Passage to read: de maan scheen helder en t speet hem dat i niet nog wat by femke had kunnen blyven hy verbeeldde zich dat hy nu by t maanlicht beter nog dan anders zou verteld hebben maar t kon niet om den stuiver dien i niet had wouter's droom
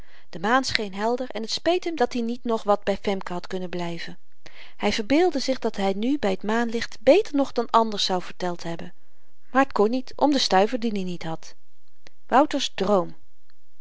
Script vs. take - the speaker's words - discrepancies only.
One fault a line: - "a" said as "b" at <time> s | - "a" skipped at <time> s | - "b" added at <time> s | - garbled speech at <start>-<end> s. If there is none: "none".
none